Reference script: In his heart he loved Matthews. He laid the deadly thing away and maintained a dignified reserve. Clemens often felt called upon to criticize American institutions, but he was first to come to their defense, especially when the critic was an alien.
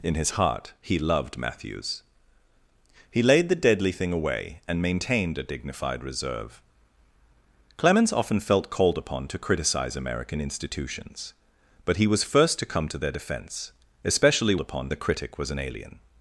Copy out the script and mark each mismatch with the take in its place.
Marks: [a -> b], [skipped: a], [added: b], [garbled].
In his heart he loved Matthews. He laid the deadly thing away and maintained a dignified reserve. Clemens often felt called upon to criticize American institutions, but he was first to come to their defense, especially [when -> upon] the critic was an alien.